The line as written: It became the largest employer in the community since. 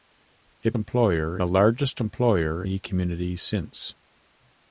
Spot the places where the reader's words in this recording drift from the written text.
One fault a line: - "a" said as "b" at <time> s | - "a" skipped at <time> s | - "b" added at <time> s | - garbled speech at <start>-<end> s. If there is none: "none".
- "became" said as "employer" at 0.7 s
- "in" skipped at 2.6 s